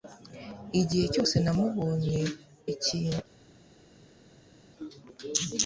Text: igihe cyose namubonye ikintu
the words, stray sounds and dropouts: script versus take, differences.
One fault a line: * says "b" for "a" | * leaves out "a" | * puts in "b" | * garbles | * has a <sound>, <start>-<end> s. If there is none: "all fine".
all fine